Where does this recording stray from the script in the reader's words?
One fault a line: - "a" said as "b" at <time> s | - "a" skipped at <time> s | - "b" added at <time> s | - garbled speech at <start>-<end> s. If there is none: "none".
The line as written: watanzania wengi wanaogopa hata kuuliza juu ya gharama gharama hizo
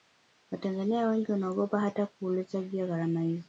- "gharama" skipped at 3.2 s